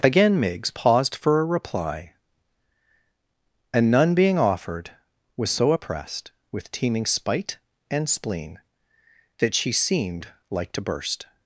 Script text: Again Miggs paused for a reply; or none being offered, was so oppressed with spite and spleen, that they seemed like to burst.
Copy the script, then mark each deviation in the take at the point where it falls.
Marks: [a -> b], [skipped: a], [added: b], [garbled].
Again Miggs paused for a reply; [or -> and] none being offered, was so oppressed with [added: teeming] spite and spleen, that [they -> she] seemed like to burst.